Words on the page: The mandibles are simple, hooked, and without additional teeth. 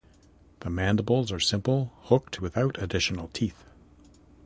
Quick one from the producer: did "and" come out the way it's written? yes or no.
no